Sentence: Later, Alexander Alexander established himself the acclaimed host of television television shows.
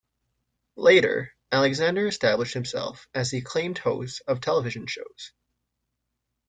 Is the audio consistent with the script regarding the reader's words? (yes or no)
no